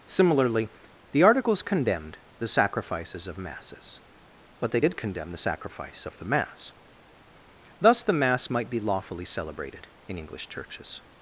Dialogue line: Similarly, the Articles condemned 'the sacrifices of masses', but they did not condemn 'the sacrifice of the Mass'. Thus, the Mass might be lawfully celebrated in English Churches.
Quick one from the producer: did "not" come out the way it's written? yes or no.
no